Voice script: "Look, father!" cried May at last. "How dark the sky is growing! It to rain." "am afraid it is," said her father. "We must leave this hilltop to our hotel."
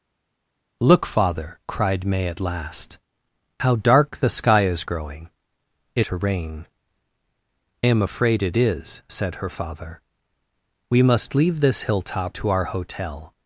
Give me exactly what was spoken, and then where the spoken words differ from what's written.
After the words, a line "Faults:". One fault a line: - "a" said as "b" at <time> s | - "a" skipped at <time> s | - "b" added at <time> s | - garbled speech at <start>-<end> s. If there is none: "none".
"Look, father!" cried May at last. "How dark the sky is growing! It to rain." "am afraid it is," said her father. "We must leave this hilltop to our hotel."
Faults:
none